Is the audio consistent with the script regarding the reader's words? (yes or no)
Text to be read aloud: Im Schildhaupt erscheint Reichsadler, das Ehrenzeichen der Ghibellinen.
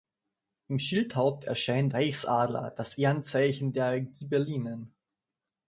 yes